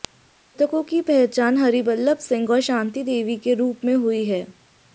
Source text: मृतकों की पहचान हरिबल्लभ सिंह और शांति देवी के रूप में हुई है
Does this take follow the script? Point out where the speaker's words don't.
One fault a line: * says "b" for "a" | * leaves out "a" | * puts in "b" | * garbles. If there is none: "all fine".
all fine